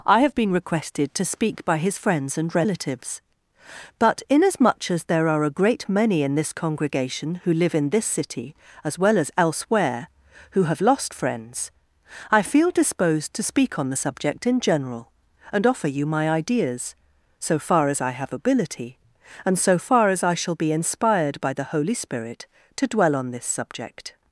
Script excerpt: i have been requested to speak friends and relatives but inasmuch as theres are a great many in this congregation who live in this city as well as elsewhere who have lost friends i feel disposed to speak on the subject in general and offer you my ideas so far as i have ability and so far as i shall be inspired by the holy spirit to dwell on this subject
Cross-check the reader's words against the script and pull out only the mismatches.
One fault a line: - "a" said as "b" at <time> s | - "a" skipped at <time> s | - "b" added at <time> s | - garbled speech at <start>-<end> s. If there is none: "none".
- "by his" added at 1.6 s
- "theres" said as "there" at 5.0 s